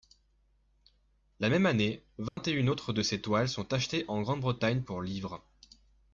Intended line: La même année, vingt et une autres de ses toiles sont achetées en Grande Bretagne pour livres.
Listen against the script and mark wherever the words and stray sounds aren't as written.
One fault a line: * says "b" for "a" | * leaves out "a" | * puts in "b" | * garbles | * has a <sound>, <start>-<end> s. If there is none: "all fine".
* has a dropout, 2.3-2.4 s